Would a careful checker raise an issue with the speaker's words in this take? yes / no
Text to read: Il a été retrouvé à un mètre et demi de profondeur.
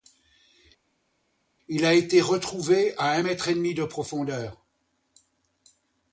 no